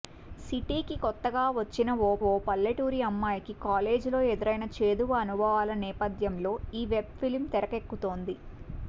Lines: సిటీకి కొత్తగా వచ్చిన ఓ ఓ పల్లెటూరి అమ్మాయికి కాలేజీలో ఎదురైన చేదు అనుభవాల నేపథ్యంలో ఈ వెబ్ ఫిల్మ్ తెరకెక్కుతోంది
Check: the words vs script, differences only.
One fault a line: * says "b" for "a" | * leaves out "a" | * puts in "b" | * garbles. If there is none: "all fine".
all fine